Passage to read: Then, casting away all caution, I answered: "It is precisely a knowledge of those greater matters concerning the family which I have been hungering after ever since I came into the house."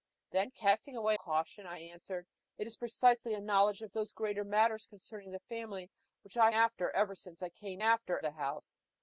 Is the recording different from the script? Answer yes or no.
yes